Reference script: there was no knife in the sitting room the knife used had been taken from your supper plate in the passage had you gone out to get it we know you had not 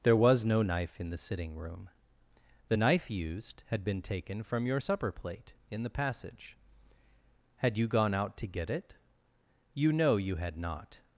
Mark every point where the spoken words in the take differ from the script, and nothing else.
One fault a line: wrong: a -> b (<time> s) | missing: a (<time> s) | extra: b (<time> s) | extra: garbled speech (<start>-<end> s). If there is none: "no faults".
wrong: we -> you (9.7 s)